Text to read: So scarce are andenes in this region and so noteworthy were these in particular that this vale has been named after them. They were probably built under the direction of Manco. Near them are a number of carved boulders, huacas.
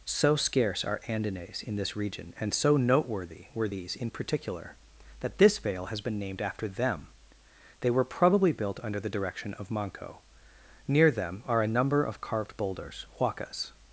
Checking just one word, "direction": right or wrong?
right